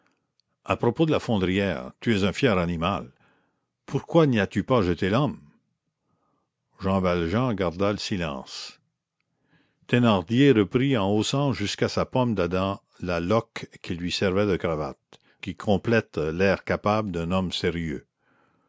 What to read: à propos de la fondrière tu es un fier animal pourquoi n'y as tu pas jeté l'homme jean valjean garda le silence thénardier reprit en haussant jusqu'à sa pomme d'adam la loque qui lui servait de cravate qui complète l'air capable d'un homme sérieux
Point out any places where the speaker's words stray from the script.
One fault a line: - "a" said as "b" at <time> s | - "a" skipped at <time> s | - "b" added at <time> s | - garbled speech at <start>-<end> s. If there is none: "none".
none